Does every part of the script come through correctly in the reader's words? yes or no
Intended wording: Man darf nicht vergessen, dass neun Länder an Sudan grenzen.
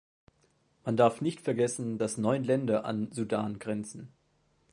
yes